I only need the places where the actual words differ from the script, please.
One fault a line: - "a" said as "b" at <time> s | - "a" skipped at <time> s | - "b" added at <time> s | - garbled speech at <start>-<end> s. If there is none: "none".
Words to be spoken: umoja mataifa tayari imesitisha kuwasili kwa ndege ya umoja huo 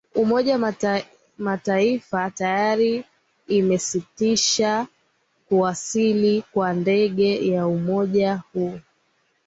none